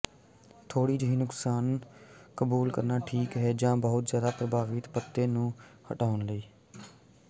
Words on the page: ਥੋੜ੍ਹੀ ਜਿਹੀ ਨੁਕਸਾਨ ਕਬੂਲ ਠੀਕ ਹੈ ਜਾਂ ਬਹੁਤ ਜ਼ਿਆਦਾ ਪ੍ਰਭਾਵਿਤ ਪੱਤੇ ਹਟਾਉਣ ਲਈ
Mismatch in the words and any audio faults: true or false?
true